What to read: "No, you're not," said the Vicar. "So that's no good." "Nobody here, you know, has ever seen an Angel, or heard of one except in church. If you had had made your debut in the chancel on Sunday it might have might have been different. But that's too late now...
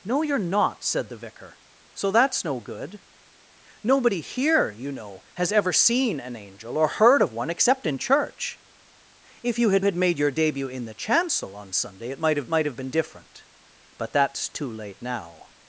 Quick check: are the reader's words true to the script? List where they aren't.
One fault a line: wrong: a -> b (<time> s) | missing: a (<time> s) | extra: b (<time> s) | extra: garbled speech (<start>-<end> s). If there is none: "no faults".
no faults